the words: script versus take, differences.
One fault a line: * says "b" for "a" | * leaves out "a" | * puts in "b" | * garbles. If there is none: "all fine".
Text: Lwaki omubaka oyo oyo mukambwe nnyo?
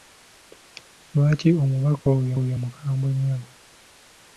all fine